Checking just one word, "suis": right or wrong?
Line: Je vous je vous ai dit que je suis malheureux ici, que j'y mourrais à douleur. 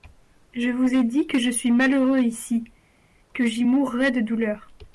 right